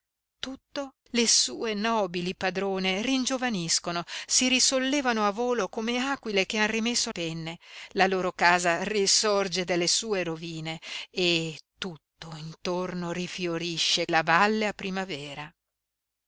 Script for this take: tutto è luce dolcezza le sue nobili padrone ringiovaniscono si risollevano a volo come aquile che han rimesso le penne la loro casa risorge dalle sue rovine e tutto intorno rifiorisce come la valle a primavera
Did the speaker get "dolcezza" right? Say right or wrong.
wrong